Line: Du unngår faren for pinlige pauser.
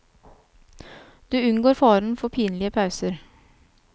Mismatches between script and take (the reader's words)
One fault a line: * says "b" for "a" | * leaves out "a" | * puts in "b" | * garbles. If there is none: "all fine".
all fine